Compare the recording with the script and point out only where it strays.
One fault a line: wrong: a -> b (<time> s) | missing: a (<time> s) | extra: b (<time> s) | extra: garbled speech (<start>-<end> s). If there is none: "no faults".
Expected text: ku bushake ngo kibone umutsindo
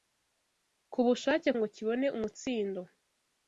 no faults